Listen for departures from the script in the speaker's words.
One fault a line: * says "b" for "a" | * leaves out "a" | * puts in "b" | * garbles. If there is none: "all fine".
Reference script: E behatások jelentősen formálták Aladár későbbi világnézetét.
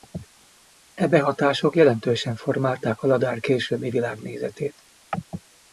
all fine